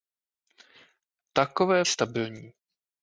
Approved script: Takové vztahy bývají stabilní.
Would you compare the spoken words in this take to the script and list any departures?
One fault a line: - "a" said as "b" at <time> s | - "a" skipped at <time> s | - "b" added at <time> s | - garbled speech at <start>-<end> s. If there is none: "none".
- "vztahy bývají" skipped at 1.9 s